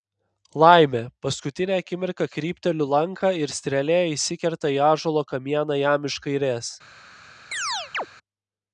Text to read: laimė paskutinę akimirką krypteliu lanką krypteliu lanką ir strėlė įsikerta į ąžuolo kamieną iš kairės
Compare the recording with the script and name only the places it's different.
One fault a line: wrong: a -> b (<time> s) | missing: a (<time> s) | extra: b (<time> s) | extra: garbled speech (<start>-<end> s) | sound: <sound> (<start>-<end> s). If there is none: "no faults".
missing: krypteliu lanką (3.3 s)
extra: jam (5.8 s)
sound: chirp (7.5-8.1 s)